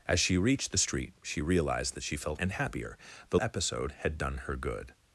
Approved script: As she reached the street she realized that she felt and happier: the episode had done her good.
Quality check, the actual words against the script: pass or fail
pass